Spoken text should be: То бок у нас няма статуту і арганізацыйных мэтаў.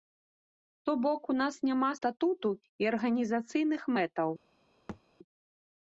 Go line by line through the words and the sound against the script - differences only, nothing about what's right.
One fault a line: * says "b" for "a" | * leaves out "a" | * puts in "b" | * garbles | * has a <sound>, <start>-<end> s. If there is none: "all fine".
* has a thud, 4.9-5.0 s